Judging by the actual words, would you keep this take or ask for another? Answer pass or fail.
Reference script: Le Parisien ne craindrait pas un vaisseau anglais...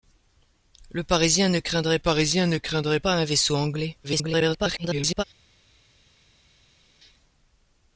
fail